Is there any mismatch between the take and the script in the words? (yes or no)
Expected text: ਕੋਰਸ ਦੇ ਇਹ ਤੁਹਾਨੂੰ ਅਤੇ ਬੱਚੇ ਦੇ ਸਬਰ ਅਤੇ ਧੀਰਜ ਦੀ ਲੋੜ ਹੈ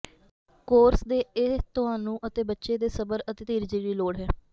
no